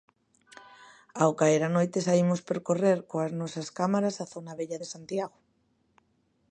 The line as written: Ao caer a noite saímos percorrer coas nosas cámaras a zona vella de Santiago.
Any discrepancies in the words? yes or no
no